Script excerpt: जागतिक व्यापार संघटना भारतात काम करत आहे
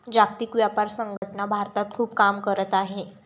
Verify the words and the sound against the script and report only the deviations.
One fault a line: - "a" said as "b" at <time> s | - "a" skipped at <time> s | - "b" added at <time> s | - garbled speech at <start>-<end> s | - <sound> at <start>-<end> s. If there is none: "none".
- dropout at 1.2-1.2 s
- "खूप" added at 1.9 s